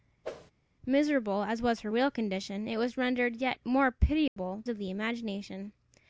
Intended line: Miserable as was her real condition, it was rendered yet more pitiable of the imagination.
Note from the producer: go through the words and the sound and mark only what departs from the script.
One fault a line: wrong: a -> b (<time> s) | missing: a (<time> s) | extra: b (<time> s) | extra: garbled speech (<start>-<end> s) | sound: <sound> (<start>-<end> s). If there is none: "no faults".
sound: whoosh (0.2-0.5 s)
sound: dropout (4.3-4.4 s)